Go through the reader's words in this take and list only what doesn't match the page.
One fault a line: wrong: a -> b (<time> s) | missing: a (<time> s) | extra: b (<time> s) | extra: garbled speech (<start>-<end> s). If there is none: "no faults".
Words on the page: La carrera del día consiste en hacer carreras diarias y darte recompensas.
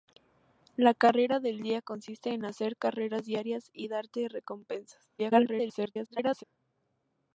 extra: garbled speech (5.2-6.4 s)